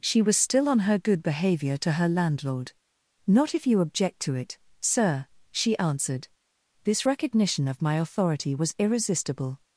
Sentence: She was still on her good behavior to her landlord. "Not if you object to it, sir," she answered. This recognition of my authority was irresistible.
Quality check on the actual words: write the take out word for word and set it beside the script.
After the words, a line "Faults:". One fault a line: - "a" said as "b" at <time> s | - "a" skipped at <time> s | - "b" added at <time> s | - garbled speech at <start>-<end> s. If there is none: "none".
She was still on her good behavior to her landlord. "Not if you object to it, sir," she answered. This recognition of my authority was irresistible.
Faults:
none